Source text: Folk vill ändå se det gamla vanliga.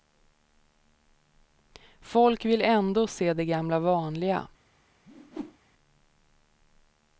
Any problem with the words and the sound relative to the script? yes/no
yes